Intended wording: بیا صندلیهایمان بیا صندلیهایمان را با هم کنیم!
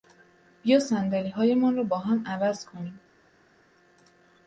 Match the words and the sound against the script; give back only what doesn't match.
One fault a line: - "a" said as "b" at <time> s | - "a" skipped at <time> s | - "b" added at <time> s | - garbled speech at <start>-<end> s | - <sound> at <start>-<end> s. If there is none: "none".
- "بیا صندلیهایمان" skipped at 1.8 s
- "عوض" added at 2.3 s